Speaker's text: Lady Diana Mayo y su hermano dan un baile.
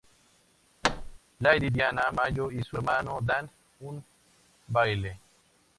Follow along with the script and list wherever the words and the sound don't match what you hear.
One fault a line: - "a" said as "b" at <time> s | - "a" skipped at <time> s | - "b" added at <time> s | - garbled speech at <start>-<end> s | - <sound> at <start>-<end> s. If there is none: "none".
- thud at 0.8-1.2 s